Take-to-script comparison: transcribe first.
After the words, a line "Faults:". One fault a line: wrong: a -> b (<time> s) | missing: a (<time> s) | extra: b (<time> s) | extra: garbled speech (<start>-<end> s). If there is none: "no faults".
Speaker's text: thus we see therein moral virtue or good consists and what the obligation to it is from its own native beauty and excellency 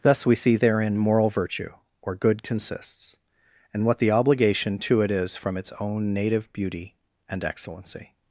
thus we see therein moral virtue or good consists and what the obligation to it is from its own native beauty and excellency
Faults:
no faults